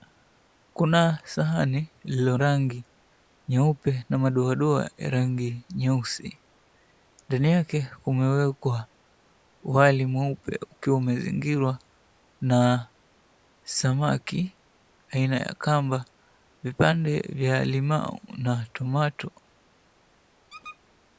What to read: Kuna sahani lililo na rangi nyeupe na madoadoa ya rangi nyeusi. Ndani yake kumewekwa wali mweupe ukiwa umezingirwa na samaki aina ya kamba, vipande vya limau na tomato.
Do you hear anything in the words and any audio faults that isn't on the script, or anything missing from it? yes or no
yes